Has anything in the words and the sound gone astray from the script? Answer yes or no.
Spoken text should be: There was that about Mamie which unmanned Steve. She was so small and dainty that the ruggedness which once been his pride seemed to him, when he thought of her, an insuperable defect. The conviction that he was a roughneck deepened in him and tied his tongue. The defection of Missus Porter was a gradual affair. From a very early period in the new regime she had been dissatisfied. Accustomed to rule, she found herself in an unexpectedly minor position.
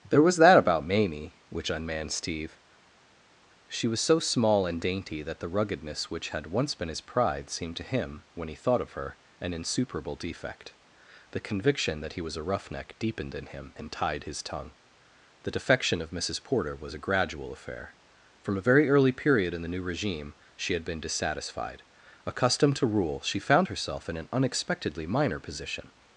yes